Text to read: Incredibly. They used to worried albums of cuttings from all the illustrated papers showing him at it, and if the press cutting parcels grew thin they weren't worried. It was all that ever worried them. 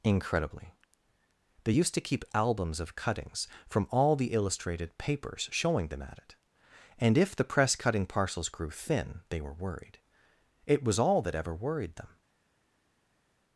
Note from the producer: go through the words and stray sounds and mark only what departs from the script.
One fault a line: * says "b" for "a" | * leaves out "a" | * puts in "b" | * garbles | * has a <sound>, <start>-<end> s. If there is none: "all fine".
* says "keep" for "worried"
* says "them" for "him"
* says "were" for "weren't"